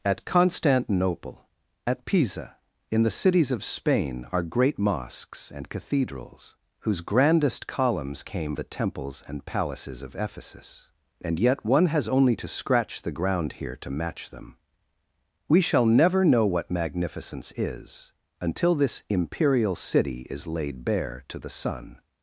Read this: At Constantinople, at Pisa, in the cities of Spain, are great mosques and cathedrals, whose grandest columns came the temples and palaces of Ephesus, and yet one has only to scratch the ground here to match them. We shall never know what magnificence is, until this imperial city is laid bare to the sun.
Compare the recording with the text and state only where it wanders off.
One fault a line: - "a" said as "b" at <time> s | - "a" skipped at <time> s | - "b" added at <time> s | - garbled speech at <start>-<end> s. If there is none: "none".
none